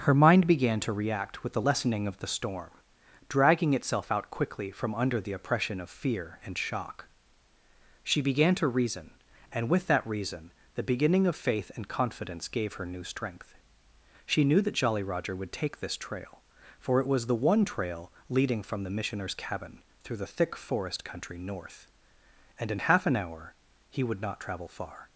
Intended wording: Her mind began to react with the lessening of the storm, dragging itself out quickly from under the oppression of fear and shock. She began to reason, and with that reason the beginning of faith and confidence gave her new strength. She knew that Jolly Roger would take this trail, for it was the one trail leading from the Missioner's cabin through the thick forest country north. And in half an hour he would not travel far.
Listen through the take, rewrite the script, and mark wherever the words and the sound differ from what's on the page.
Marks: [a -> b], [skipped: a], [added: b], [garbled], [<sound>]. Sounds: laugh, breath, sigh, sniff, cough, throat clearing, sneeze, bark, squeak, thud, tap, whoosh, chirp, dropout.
Her mind began to react with the lessening of the storm, dragging itself out quickly from under the oppression of fear and shock. She began to reason, and with that reason the beginning of faith and confidence gave her new strength. She knew that Jolly Roger would take this trail, for it was the one trail leading from the Missioner's cabin through the thick forest country north. And in half an hour he would not travel far.